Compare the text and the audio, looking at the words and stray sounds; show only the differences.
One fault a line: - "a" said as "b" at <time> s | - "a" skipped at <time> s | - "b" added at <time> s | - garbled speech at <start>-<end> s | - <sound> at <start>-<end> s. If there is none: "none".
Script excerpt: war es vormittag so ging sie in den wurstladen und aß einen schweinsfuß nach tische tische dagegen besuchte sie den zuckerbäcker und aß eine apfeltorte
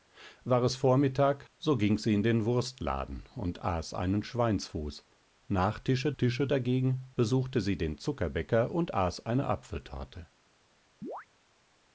- chirp at 11.0-11.3 s